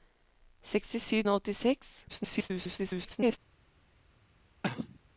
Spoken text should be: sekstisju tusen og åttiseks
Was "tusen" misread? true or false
true